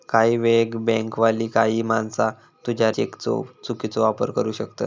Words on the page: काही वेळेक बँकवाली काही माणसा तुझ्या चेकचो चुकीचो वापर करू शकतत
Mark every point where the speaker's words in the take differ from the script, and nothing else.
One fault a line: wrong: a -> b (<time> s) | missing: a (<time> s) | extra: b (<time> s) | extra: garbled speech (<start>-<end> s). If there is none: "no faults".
no faults